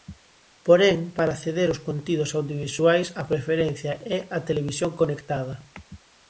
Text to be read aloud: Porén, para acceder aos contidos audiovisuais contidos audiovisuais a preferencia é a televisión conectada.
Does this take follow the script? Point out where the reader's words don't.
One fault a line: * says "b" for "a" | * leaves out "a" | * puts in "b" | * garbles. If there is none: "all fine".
* leaves out "contidos audiovisuais"